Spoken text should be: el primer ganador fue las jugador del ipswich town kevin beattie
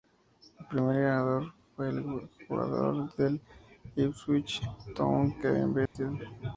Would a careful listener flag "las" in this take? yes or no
yes